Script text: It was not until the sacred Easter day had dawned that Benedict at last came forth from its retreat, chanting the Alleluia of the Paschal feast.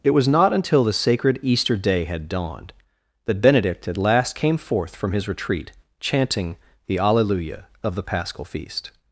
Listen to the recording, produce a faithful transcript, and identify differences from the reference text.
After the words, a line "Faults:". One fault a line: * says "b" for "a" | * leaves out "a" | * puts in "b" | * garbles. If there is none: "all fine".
It was not until the sacred Easter day had dawned that Benedict at last came forth from his retreat, chanting the Alleluia of the Paschal feast.
Faults:
* says "his" for "its"